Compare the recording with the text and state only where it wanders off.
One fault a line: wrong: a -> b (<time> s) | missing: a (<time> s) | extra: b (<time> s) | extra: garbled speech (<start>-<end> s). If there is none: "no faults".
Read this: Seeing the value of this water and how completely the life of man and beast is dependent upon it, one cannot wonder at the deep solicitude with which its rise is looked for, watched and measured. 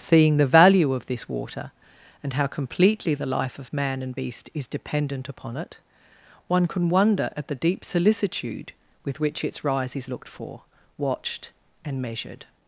wrong: cannot -> can (6.7 s)